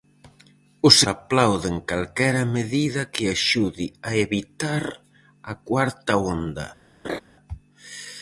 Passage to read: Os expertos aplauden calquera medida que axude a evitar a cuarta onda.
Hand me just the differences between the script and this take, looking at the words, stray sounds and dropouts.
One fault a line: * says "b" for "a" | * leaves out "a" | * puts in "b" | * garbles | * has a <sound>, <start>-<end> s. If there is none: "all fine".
* leaves out "expertos"
* has a laugh, 7.0-7.2 s